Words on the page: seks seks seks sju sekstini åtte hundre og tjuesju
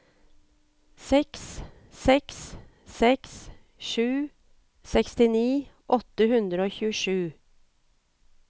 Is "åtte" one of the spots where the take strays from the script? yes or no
no